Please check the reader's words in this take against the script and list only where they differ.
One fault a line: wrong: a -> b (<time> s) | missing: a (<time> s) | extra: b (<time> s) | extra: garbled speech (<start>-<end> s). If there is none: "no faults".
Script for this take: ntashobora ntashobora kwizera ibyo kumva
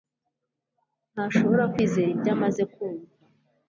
missing: ntashobora (1.6 s)
extra: amaze (2.3 s)